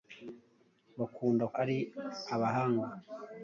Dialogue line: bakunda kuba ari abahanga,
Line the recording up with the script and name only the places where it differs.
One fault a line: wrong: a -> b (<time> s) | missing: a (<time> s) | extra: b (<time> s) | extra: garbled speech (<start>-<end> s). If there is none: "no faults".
missing: kuba (1.4 s)